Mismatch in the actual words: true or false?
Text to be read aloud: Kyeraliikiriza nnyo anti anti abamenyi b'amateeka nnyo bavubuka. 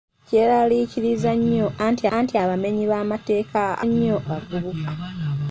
false